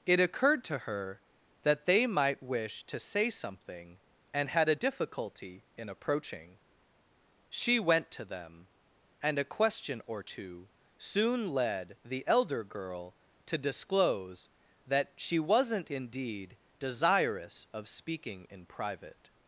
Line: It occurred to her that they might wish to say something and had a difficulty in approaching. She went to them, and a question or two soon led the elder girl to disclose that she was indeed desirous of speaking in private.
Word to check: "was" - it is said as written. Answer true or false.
false